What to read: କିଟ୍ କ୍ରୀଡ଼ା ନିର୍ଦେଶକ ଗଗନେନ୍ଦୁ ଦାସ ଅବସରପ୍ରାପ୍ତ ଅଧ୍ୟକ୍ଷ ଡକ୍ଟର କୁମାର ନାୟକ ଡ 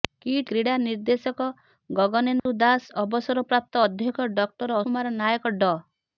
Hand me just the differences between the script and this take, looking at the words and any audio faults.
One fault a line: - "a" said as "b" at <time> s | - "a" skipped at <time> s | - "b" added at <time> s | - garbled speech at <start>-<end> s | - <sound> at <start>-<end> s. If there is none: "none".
- dropout at 2.4-2.5 s